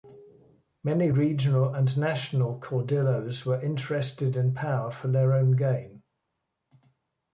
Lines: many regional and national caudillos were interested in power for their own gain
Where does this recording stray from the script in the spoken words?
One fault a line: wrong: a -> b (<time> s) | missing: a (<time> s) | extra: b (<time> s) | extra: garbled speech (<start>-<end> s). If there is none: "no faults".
no faults